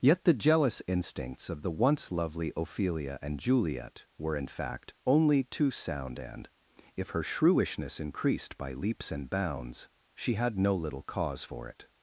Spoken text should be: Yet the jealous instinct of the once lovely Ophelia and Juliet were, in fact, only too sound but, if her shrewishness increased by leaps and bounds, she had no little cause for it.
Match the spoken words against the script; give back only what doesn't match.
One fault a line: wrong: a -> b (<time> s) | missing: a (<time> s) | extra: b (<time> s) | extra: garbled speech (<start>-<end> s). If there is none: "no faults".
wrong: instinct -> instincts (0.9 s)
wrong: but -> and (6.2 s)